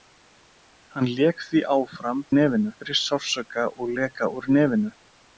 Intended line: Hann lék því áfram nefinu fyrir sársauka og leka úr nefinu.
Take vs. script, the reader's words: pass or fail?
pass